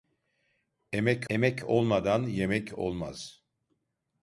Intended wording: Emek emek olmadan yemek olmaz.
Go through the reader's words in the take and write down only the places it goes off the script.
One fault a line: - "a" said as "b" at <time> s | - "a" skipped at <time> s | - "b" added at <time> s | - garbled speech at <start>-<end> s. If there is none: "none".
none